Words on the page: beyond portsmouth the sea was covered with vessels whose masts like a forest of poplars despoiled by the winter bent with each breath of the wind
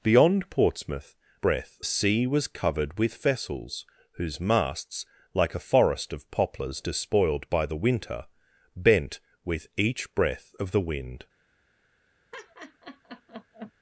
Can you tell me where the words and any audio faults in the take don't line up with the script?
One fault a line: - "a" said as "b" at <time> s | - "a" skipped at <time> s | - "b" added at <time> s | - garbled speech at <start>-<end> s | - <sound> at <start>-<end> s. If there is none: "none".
- "the" said as "breath" at 1.4 s
- laugh at 12.3-13.7 s